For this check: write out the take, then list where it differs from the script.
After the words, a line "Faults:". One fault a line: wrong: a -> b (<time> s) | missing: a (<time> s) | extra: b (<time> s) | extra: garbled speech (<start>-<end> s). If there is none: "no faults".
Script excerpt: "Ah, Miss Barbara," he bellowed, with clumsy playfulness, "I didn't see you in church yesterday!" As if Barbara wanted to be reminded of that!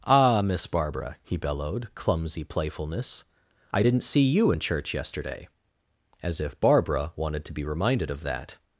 "Ah, Miss Barbara," he bellowed, clumsy playfulness, "I didn't see you in church yesterday!" As if Barbara wanted to be reminded of that!
Faults:
missing: with (1.9 s)